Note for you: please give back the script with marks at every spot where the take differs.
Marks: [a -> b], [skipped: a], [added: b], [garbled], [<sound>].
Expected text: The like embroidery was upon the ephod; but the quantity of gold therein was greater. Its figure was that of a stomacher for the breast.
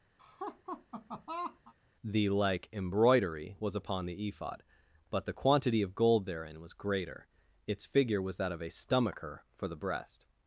[laugh] The like embroidery was upon the ephod; but the quantity of gold therein was greater. Its figure was that of a stomacher for the breast.